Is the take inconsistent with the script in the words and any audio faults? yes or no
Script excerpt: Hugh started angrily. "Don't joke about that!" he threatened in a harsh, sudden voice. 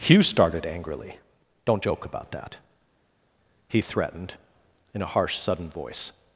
no